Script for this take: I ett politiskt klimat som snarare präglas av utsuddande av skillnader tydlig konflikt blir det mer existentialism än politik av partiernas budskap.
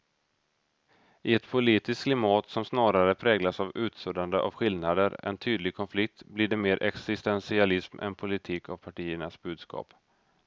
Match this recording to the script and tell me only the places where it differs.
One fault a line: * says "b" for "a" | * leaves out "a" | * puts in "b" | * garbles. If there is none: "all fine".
* puts in "än"